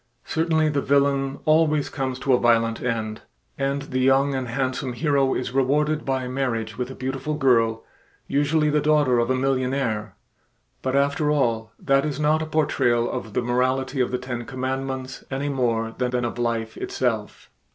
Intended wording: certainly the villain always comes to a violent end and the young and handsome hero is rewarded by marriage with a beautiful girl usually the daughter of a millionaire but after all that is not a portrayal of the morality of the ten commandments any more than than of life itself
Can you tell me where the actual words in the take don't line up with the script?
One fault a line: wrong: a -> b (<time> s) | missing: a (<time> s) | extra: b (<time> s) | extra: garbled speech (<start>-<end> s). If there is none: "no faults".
no faults